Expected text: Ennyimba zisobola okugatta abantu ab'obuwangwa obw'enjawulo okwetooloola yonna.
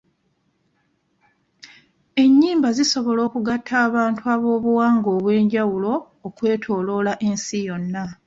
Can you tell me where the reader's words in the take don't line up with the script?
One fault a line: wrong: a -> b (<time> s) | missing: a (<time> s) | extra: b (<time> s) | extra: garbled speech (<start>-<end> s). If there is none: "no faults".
extra: ensi (7.3 s)